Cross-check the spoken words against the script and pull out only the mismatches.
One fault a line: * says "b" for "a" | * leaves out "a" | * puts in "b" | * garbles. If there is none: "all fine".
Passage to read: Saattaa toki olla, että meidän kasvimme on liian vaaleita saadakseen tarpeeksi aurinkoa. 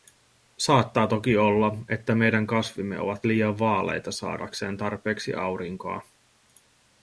* says "ovat" for "on"